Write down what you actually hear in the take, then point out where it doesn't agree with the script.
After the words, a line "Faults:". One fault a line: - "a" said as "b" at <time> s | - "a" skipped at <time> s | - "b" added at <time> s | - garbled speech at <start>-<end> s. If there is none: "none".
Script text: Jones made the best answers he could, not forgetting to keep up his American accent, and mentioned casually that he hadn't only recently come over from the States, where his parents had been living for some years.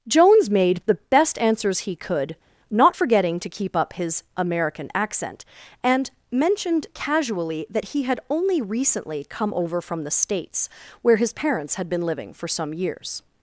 Jones made the best answers he could, not forgetting to keep up his American accent, and mentioned casually that he had only recently come over from the States, where his parents had been living for some years.
Faults:
- "hadn't" said as "had" at 8.0 s